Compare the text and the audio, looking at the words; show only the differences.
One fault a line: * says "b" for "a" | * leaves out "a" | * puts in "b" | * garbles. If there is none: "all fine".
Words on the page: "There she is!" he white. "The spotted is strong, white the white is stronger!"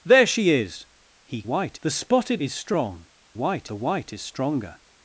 all fine